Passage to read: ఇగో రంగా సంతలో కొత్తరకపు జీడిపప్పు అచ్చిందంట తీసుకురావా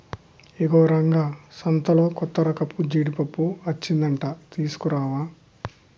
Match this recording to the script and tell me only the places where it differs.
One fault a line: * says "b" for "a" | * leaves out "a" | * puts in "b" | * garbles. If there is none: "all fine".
all fine